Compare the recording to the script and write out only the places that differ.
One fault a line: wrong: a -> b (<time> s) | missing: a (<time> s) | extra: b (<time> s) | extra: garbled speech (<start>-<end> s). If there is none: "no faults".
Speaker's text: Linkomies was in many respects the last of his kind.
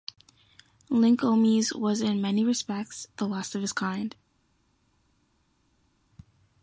no faults